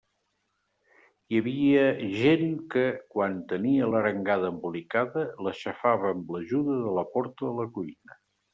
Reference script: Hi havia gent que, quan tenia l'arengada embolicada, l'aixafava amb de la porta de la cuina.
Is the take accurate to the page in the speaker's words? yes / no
no